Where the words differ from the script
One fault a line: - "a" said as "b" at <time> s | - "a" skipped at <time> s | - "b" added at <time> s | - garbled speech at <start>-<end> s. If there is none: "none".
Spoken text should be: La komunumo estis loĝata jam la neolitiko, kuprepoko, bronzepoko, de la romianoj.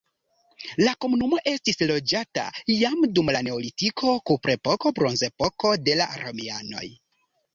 - "dum" added at 3.2 s